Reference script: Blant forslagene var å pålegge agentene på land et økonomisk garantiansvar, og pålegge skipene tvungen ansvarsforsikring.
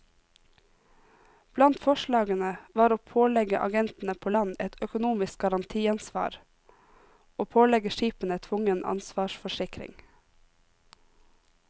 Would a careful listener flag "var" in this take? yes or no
no